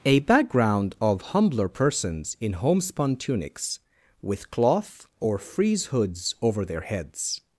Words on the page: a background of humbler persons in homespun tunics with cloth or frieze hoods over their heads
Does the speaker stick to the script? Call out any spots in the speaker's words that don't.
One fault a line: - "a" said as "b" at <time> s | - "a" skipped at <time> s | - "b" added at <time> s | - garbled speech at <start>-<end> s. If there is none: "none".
none